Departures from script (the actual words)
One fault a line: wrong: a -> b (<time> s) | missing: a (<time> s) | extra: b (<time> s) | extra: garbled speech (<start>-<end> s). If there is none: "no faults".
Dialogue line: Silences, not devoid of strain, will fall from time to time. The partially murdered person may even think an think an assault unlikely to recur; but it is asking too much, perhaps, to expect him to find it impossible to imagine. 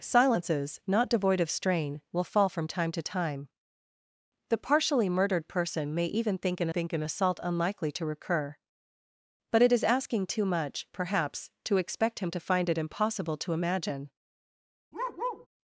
no faults